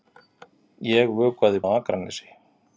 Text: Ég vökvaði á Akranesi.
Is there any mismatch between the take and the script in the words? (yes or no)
no